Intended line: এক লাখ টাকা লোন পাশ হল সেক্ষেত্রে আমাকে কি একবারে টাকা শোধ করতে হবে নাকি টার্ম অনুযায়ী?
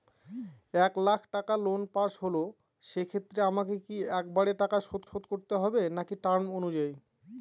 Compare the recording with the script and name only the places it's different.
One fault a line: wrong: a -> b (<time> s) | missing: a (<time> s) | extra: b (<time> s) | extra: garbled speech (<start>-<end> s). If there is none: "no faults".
extra: শোধ (5.1 s)